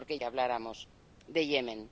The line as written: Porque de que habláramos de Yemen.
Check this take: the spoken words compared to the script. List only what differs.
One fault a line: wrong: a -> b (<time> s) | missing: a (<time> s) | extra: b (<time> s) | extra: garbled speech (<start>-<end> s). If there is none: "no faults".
no faults